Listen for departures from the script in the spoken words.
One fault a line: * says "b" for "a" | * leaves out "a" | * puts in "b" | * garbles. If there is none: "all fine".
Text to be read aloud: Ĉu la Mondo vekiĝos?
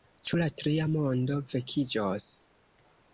* puts in "Tria"